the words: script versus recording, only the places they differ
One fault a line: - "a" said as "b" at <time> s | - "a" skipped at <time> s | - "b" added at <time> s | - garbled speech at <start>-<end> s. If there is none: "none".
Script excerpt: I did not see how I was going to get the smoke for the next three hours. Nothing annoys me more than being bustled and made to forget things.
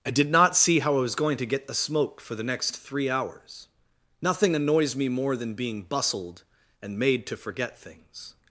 none